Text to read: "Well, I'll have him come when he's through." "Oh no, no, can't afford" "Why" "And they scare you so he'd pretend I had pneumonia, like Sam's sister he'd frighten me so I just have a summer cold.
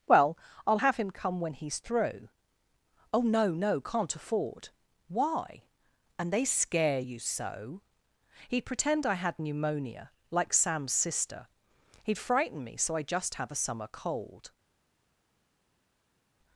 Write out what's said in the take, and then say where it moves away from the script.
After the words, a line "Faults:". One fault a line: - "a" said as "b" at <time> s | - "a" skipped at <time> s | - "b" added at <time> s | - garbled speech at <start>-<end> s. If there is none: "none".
"Well, I'll have him come when he's through." "Oh no, no, can't afford" "Why" "And they scare you so he'd pretend I had pneumonia, like Sam's sister he'd frighten me so I just have a summer cold.
Faults:
none